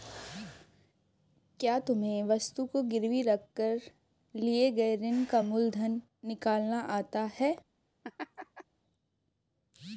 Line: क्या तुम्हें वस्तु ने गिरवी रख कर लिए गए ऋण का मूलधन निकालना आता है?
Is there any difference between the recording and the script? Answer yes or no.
yes